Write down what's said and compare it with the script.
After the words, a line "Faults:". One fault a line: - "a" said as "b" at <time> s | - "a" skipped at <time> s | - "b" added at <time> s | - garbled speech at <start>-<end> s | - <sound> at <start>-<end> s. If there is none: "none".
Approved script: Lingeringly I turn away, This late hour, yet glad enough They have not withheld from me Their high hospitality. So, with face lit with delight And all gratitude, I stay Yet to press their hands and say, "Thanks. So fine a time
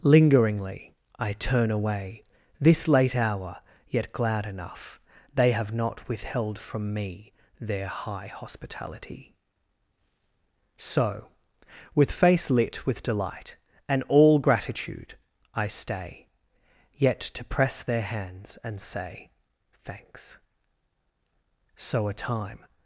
Lingeringly I turn away, This late hour, yet glad enough They have not withheld from me Their high hospitality. So, with face lit with delight And all gratitude, I stay Yet to press their hands and say, "Thanks. So a time
Faults:
- "fine" skipped at 22.1 s